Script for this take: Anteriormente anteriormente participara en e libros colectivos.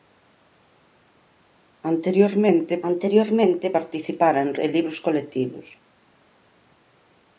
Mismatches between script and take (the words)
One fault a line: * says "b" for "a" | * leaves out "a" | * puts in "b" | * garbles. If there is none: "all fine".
all fine